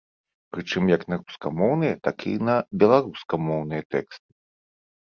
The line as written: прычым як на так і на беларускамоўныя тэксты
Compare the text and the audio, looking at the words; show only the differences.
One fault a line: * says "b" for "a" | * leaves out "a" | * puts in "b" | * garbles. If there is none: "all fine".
* puts in "рускамоўныя"